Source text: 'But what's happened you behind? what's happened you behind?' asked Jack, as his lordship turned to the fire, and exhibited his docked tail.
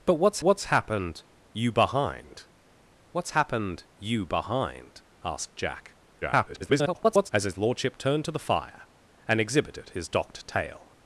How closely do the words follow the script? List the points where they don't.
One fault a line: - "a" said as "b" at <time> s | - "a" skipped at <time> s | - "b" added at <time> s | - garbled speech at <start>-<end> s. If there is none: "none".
- "what's" added at 0.4 s
- garbled speech at 6.2-7.3 s